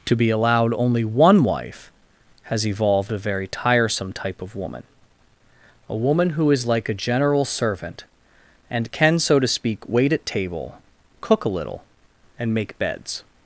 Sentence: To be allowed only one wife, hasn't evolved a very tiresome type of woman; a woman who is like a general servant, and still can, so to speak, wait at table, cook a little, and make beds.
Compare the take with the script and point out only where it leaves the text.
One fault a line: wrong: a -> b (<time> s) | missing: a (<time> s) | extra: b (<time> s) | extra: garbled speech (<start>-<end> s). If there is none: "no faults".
wrong: hasn't -> has (2.4 s)
missing: still (8.9 s)